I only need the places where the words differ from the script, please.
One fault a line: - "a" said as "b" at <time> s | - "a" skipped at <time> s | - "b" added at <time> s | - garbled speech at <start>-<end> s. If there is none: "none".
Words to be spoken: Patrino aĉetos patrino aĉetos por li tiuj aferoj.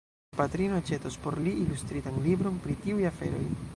- "patrino aĉetos por li" said as "por li ilustritan libron pri" at 1.2 s